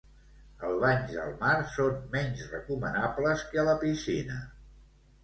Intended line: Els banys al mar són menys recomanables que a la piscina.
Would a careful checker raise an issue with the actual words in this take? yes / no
no